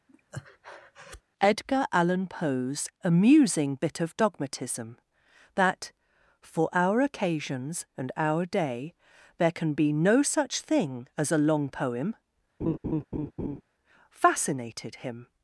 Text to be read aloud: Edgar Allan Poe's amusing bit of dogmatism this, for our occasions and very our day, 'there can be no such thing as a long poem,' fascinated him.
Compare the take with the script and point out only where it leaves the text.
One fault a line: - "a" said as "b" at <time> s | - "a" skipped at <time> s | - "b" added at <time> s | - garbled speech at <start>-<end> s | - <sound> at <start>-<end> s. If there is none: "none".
- breath at 0.1-1.2 s
- "this" said as "that" at 5.6 s
- "very" skipped at 8.1 s
- laugh at 12.6-13.6 s